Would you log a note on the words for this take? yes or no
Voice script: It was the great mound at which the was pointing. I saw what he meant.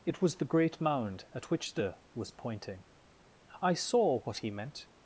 no